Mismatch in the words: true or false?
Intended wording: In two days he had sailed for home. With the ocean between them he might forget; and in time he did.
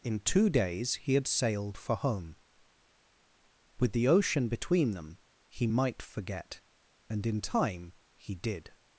false